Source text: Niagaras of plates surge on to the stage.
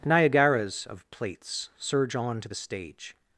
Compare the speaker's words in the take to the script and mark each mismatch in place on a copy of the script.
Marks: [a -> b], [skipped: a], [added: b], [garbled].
Niagaras of plates surge on to the stage.